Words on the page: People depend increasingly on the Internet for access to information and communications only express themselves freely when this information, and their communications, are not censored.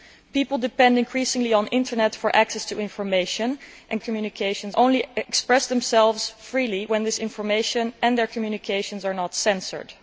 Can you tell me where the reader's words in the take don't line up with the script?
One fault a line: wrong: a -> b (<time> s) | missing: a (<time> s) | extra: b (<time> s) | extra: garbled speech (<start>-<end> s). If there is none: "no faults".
no faults